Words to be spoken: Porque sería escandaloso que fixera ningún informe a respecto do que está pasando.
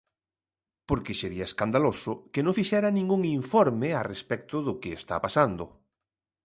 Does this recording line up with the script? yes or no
no